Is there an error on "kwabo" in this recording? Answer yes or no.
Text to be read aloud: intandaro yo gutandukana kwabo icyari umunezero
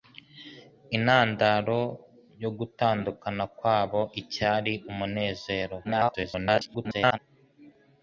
no